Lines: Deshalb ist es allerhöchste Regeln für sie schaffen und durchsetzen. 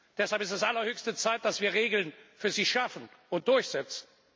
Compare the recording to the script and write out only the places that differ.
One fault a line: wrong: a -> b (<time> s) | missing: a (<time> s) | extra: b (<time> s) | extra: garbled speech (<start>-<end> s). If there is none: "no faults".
extra: Zeit dass wir (1.1 s)